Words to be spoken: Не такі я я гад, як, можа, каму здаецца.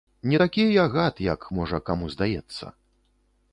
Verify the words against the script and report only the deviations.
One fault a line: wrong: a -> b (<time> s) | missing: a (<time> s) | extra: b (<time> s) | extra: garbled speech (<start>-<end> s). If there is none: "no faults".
missing: я (0.8 s)